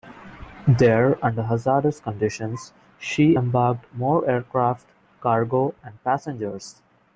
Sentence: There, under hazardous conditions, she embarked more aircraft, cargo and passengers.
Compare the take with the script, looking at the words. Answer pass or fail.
pass